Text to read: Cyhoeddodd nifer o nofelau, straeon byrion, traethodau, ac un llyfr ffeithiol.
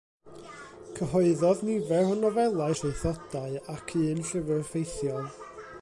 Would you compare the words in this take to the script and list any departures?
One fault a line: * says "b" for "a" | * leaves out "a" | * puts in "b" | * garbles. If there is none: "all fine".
* leaves out "straeon byrion"